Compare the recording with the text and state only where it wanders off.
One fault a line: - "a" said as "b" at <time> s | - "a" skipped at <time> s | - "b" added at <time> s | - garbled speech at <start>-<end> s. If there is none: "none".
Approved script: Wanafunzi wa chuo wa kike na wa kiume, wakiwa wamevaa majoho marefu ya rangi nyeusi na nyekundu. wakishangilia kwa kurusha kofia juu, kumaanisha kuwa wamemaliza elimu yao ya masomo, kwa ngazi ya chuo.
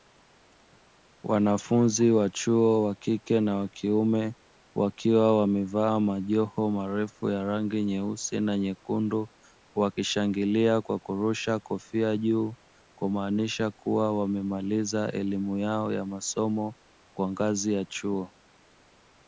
none